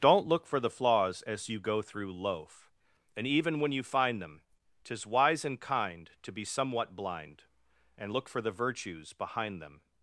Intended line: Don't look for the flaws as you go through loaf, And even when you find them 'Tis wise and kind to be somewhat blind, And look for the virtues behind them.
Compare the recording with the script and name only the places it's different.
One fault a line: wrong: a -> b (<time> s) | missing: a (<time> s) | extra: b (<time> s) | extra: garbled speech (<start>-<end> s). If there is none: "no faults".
no faults